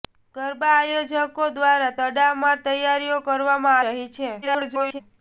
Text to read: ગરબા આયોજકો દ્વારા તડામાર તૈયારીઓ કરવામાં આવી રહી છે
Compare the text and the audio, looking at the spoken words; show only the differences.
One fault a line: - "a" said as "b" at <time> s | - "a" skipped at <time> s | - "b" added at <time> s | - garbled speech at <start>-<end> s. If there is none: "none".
- "આવી" skipped at 3.8 s
- garbled speech at 4.4-5.0 s